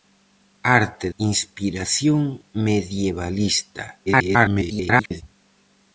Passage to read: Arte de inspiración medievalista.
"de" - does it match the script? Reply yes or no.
no